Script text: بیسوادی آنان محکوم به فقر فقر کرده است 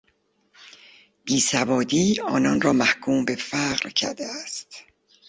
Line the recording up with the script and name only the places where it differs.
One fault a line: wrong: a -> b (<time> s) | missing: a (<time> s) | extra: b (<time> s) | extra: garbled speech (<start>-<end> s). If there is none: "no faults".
extra: را (2.6 s)
missing: فقر (3.9 s)